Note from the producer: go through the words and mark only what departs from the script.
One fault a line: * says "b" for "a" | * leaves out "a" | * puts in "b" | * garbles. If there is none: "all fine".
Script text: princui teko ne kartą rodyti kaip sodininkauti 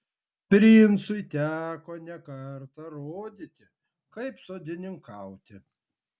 all fine